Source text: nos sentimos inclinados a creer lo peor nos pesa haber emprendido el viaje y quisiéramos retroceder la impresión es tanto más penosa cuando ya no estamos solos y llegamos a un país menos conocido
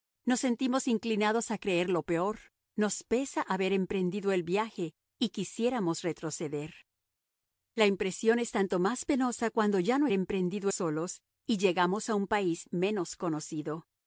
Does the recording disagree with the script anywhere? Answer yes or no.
yes